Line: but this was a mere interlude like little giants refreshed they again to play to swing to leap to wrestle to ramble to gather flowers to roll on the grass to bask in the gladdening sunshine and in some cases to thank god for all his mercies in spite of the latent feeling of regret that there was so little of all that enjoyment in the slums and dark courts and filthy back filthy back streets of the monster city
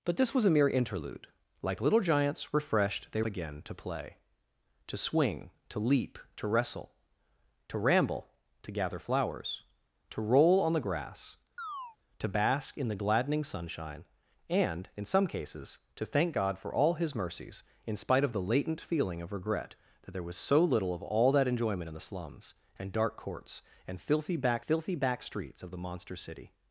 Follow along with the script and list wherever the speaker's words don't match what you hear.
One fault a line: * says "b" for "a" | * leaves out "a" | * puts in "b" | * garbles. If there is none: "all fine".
all fine